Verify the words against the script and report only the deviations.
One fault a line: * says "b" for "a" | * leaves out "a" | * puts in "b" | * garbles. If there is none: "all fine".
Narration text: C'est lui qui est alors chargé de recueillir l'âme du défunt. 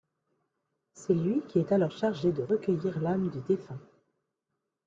all fine